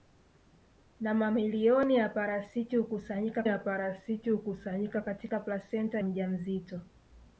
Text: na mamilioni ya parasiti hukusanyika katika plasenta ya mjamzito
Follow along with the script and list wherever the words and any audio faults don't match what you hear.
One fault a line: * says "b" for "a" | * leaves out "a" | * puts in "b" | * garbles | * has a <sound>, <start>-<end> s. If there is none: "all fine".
* puts in "ya parasiti hukusanyika"
* leaves out "ya"